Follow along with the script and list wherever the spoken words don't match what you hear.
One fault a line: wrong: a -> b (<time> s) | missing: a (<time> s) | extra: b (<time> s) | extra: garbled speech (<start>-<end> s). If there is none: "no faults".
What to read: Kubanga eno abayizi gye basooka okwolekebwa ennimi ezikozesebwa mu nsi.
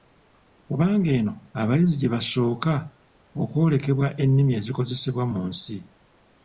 no faults